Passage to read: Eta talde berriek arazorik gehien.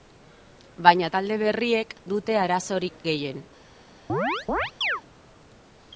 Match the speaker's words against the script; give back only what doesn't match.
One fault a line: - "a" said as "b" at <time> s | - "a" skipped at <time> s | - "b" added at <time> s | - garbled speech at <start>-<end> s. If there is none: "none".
- "Eta" said as "Baina" at 0.9 s
- "dute" added at 2.1 s